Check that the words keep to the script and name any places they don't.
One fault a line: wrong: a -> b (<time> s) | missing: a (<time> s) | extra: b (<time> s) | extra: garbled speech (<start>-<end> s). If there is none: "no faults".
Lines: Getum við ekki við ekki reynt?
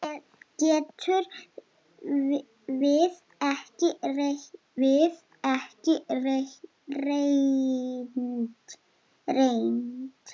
no faults